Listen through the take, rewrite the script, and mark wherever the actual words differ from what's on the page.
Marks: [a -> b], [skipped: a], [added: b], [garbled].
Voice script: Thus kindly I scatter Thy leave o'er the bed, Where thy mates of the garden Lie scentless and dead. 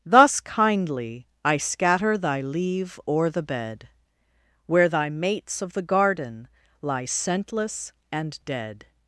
Thus kindly I scatter Thy leave o'er the bed, Where thy mates of the garden Lie scentless and dead.